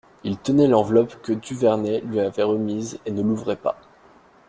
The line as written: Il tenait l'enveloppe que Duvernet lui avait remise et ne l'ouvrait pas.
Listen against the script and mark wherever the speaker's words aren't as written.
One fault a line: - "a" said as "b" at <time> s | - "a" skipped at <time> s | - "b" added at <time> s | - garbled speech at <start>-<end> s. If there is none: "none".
none